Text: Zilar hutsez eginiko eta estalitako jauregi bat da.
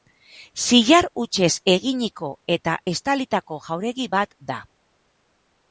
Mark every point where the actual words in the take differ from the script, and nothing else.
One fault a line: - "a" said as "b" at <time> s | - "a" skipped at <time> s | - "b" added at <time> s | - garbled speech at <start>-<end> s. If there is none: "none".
none